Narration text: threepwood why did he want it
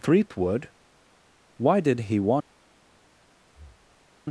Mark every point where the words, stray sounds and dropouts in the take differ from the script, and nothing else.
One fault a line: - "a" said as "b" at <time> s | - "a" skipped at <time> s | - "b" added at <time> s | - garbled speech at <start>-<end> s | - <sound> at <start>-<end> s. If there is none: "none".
- "it" skipped at 2.3 s
- breath at 3.4-4.1 s